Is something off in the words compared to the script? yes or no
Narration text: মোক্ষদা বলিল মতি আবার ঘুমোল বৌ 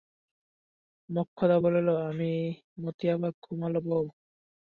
no